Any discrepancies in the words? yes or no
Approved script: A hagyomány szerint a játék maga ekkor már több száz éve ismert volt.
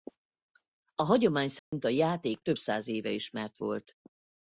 yes